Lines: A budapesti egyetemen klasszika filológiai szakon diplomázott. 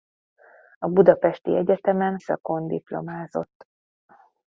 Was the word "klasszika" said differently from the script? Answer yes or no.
yes